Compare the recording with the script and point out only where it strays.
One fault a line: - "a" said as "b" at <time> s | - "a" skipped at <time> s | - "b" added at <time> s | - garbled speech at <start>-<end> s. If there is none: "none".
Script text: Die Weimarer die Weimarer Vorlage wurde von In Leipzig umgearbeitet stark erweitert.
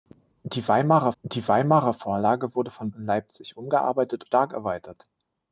none